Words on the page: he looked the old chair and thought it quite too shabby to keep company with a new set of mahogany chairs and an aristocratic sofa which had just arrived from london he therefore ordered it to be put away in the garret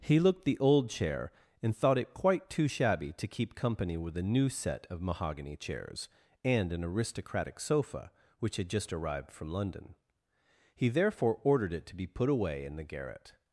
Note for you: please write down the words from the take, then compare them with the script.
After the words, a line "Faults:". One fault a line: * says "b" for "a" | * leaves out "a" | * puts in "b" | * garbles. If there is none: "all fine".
he looked the old chair and thought it quite too shabby to keep company with a new set of mahogany chairs and an aristocratic sofa which had just arrived from london he therefore ordered it to be put away in the garret
Faults:
all fine